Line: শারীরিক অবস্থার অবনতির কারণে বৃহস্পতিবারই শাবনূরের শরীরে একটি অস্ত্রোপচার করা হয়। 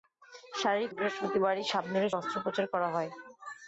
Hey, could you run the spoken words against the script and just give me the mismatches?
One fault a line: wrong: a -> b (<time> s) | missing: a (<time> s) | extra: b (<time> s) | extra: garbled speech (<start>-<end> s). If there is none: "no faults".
missing: অবস্থার অবনতির কারণে (0.9 s)
missing: শরীরে একটি (2.2 s)